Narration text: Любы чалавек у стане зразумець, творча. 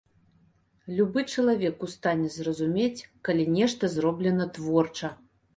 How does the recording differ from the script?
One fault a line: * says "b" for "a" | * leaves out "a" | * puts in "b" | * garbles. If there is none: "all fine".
* puts in "калі нешта зроблена"